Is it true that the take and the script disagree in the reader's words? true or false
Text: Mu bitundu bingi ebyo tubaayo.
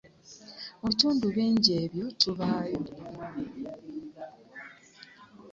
false